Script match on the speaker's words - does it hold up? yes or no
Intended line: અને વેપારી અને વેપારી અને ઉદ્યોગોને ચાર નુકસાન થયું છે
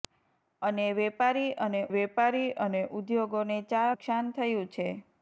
yes